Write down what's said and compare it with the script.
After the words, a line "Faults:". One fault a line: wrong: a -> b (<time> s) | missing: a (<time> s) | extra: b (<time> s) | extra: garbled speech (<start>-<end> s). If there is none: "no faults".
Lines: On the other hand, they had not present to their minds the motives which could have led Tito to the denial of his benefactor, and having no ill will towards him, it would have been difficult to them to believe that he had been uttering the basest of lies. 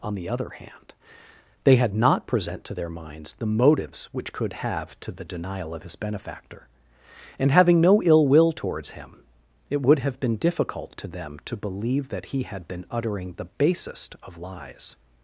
On the other hand, they had not present to their minds the motives which could have to the denial of his benefactor, and having no ill will towards him, it would have been difficult to them to believe that he had been uttering the basest of lies.
Faults:
missing: led Tito (5.0 s)